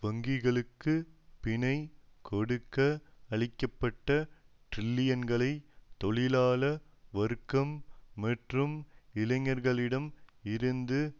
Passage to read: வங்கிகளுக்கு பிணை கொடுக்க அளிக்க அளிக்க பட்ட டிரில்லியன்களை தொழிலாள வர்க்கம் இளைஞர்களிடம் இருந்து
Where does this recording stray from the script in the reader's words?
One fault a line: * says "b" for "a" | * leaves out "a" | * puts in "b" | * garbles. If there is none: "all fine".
* leaves out "அளிக்க"
* puts in "மற்றும்"